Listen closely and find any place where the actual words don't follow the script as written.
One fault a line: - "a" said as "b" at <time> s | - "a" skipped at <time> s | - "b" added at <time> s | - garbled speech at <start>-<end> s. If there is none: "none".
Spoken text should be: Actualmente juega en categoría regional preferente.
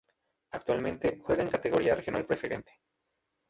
none